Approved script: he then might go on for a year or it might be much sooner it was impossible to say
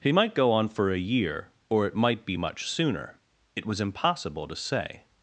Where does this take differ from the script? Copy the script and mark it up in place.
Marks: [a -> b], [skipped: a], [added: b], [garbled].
he [skipped: then] might go on for a year or it might be much sooner it was impossible to say